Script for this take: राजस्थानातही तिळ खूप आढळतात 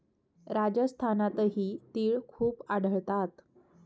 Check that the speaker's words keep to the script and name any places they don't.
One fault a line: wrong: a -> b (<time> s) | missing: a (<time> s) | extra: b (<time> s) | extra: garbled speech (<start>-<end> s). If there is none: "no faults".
no faults